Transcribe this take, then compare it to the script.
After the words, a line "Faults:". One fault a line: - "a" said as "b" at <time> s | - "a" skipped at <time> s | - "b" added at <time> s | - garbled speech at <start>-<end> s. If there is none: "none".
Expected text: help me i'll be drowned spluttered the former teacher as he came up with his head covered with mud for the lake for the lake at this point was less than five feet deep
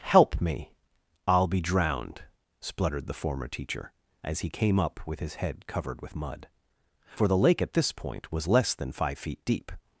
help me i'll be drowned spluttered the former teacher as he came up with his head covered with mud for the lake at this point was less than five feet deep
Faults:
- "for the lake" skipped at 7.6 s